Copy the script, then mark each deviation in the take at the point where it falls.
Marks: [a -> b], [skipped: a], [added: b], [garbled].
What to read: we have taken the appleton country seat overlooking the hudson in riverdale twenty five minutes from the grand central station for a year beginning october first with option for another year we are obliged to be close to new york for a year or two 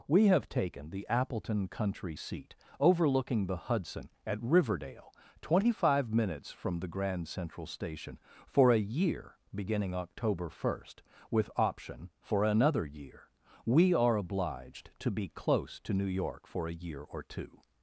we have taken the appleton country seat overlooking the hudson [in -> at] riverdale twenty five minutes from the grand central station for a year beginning october first with option for another year we are obliged to be close to new york for a year or two